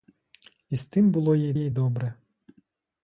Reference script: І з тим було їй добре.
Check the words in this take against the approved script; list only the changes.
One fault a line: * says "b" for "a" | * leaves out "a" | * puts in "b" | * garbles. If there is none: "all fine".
* puts in "їй"